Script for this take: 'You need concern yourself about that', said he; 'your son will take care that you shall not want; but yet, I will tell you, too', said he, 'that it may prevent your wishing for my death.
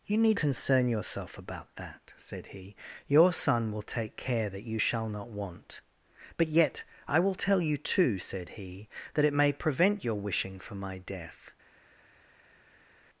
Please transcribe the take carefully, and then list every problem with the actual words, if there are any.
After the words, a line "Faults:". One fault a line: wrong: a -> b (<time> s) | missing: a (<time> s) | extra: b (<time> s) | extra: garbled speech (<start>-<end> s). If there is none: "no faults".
'You need concern yourself about that', said he; 'your son will take care that you shall not want; but yet, I will tell you, too', said he, 'that it may prevent your wishing for my death.
Faults:
no faults